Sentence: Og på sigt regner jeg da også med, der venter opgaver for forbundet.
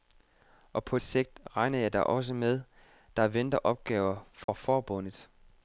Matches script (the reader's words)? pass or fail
pass